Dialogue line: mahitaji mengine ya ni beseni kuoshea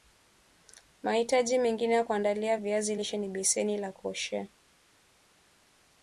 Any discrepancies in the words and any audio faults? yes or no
yes